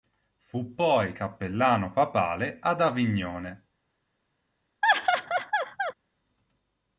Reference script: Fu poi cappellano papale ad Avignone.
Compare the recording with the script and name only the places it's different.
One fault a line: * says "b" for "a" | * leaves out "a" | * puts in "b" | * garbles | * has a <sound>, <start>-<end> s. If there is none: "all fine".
* has a laugh, 4.8-5.9 s